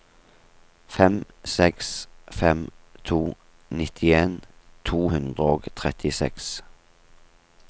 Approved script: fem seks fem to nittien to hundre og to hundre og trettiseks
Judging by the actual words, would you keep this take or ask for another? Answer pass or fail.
fail